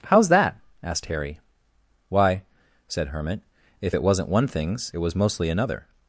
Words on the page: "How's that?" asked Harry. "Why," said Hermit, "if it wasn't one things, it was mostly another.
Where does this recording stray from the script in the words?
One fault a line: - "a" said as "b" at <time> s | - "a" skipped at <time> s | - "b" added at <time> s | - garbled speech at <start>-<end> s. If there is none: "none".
none